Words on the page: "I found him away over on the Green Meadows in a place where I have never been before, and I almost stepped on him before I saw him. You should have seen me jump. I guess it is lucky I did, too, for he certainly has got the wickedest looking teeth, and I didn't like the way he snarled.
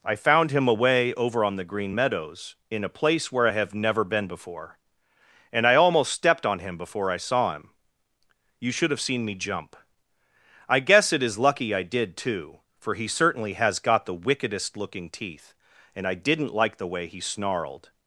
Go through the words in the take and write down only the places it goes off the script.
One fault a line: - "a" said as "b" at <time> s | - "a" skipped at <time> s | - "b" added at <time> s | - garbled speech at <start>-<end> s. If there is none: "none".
none